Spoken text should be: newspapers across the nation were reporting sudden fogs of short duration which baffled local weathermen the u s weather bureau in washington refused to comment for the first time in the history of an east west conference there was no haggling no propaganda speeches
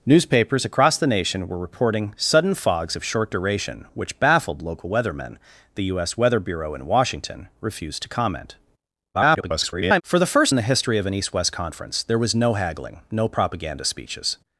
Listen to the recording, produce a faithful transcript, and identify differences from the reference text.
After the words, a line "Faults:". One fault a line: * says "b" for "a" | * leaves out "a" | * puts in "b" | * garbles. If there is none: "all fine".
newspapers across the nation were reporting sudden fogs of short duration which baffled local weathermen the u s weather bureau in washington refused to comment [garbled] for the first in the history of an east west conference there was no haggling no propaganda speeches
Faults:
* garbles
* leaves out "time"